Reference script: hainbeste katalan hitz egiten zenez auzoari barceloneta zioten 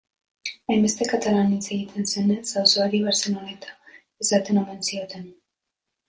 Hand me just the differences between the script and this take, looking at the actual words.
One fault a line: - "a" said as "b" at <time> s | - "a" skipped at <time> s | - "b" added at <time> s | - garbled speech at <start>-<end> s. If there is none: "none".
- "esaten omen" added at 4.2 s